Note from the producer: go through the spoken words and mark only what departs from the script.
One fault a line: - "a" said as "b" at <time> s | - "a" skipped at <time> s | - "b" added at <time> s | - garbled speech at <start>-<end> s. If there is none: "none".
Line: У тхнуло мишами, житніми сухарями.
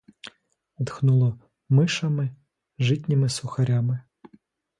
none